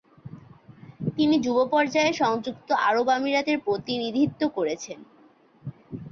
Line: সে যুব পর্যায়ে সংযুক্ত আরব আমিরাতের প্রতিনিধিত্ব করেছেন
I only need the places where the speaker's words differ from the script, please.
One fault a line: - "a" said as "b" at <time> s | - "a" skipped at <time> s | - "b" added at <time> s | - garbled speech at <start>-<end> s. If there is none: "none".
- "সে" said as "তিনি" at 1.2 s